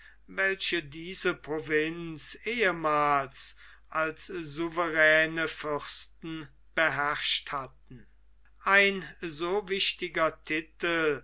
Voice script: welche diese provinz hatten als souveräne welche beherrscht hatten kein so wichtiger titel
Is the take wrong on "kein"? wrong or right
wrong